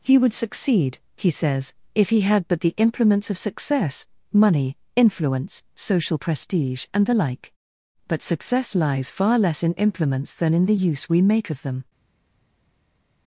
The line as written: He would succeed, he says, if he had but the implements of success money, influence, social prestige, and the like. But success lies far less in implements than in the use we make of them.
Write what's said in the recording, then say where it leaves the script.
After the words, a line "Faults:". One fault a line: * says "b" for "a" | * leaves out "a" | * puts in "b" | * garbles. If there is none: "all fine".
He would succeed, he says, if he had but the implements of success money, influence, social prestige, and the like. But success lies far less in implements than in the use we make of them.
Faults:
all fine